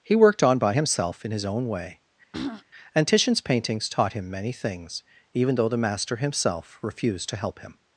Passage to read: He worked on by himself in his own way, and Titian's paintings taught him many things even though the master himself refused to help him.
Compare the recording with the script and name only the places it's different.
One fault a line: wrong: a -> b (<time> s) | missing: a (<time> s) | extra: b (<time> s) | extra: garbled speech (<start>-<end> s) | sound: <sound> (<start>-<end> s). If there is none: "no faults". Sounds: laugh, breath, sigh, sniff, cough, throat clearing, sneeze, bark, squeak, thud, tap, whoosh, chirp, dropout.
sound: throat clearing (2.3-2.6 s)